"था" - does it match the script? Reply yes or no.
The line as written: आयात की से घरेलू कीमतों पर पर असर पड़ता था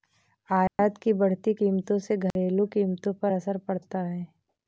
no